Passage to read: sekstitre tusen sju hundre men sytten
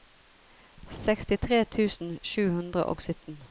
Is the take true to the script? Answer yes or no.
no